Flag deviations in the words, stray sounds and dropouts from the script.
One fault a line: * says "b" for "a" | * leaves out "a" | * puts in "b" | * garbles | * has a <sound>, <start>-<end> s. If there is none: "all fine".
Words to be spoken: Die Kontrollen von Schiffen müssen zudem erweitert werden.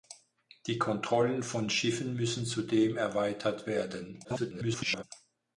* garbles